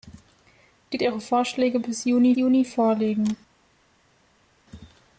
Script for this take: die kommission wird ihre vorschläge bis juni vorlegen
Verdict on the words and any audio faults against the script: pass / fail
fail